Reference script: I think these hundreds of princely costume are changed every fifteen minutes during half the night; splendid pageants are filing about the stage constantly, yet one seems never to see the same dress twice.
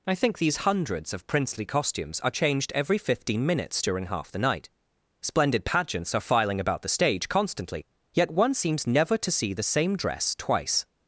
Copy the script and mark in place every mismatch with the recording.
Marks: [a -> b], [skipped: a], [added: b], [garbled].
I think these hundreds of princely [costume -> costumes] are changed every fifteen minutes during half the night; splendid pageants are filing about the stage constantly, yet one seems never to see the same dress twice.